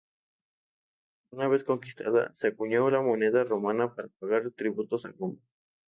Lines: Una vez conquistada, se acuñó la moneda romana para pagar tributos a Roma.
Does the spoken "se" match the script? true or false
true